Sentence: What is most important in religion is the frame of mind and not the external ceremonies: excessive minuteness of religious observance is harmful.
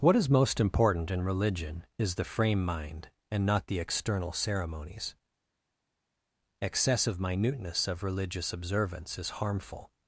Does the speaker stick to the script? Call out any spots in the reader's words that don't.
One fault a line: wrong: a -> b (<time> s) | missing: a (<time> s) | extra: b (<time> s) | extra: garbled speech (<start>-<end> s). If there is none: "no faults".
missing: of (2.6 s)